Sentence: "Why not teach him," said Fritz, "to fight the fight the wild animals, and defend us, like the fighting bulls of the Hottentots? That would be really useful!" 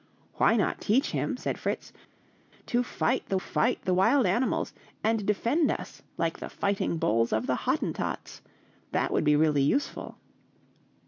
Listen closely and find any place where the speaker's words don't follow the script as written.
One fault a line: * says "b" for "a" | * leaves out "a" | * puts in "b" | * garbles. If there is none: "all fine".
all fine